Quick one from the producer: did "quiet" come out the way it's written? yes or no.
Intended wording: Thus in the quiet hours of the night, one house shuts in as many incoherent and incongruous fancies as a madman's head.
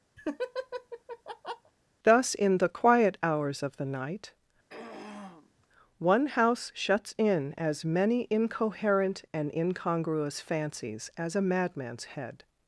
yes